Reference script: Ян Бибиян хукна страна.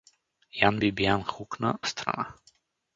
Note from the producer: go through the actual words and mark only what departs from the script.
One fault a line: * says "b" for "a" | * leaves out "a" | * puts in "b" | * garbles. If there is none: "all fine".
all fine